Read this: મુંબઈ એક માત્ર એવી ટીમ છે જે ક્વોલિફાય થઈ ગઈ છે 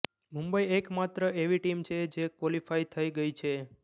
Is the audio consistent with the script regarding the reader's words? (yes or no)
yes